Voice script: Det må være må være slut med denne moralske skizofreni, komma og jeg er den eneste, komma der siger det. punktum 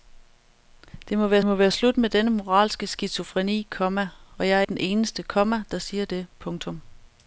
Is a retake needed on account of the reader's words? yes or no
no